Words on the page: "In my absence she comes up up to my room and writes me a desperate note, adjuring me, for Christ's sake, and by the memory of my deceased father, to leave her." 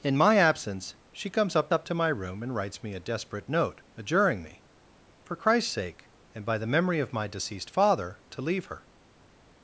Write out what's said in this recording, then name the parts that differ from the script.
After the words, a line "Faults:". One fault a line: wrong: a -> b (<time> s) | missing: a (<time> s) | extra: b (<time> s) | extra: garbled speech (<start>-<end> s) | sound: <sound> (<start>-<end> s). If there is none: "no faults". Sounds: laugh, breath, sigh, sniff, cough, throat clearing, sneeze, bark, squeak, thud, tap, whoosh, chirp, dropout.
"In my absence she comes up up to my room and writes me a desperate note, adjuring me, for Christ's sake, and by the memory of my deceased father, to leave her."
Faults:
no faults